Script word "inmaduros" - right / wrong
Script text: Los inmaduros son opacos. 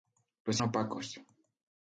wrong